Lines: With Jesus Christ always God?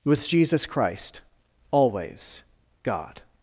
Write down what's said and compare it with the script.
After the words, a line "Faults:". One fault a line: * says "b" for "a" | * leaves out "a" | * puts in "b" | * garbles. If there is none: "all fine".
With Jesus Christ always God?
Faults:
all fine